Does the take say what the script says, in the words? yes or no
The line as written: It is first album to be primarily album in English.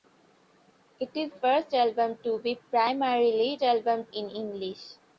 yes